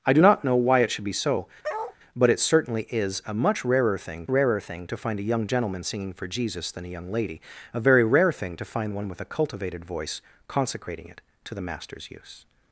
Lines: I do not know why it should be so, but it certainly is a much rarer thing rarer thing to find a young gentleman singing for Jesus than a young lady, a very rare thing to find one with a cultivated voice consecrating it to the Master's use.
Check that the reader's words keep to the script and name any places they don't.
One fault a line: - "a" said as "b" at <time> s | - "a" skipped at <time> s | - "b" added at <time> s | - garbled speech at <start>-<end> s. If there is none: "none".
none